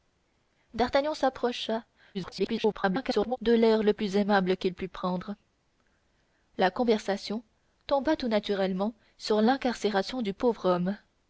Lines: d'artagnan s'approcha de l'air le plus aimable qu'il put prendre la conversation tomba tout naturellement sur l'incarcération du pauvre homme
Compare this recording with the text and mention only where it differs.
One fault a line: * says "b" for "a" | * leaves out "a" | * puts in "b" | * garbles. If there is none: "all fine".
* garbles